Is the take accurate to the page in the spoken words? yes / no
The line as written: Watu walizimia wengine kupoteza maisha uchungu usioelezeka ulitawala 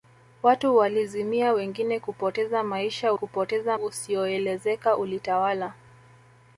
no